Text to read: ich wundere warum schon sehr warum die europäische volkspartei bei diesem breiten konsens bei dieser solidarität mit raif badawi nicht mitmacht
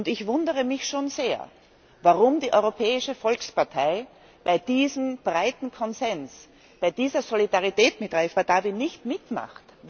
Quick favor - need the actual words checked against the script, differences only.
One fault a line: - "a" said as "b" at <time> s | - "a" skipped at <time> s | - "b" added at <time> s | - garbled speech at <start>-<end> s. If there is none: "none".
- "warum" said as "mich" at 0.6 s